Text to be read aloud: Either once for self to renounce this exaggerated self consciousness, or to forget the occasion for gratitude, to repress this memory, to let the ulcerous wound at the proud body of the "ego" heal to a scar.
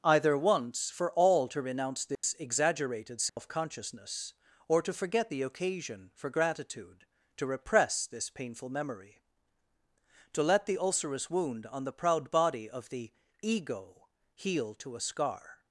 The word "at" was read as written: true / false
false